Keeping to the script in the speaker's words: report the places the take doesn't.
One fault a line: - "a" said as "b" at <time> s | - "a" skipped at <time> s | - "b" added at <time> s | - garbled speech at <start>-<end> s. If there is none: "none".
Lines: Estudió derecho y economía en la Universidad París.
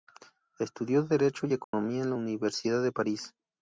- "de" added at 2.8 s